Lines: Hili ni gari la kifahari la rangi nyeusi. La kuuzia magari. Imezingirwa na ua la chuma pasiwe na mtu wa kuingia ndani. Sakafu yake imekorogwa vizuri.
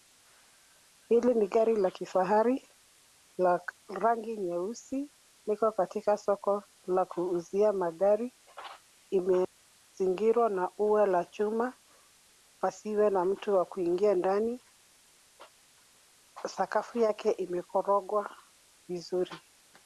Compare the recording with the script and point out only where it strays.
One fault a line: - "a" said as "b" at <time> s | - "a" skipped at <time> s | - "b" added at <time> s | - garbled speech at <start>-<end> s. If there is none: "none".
- "Liko katika soko" added at 5.5 s